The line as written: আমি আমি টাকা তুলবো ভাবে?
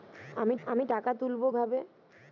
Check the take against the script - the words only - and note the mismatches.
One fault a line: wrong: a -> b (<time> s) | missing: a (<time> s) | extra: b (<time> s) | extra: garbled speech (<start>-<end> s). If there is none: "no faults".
no faults